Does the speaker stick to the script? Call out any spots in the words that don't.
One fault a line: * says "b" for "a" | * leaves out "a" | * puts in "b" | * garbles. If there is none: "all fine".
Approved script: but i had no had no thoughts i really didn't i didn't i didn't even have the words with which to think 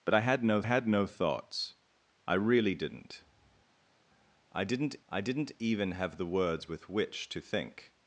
all fine